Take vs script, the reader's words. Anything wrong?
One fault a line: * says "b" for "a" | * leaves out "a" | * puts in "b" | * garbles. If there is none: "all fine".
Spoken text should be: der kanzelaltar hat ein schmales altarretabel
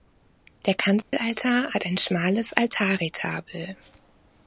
all fine